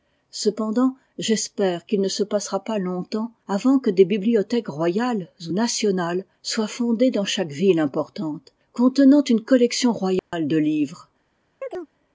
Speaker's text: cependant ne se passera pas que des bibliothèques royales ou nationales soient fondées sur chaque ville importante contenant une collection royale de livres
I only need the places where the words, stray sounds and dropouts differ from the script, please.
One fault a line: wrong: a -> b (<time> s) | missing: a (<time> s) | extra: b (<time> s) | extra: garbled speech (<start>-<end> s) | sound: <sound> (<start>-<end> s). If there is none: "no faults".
extra: j'espère qu'il (1.2 s)
extra: longtemps avant (2.8 s)
wrong: sur -> dans (7.1 s)
sound: dropout (10.2-10.3 s)
sound: chirp (11.6-11.9 s)